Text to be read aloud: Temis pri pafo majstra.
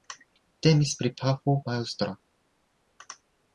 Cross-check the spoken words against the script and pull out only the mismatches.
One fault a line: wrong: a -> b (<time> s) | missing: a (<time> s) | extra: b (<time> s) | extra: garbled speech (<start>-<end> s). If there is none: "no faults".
no faults